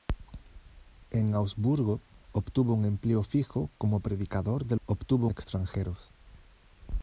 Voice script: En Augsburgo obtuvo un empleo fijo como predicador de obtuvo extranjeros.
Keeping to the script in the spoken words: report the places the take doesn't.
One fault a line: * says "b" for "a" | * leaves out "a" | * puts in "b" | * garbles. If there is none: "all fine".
all fine